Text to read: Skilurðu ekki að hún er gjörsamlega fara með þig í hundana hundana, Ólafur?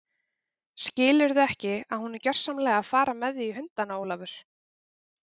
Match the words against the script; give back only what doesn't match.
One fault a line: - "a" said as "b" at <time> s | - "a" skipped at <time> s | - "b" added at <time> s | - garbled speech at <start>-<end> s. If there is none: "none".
- "að" added at 2.8 s
- "hundana" skipped at 4.0 s